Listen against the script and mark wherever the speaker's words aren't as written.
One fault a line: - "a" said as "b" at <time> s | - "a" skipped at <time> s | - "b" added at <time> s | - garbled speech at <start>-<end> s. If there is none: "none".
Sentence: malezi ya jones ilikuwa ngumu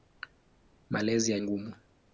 - "jones ilikuwa" skipped at 1.4 s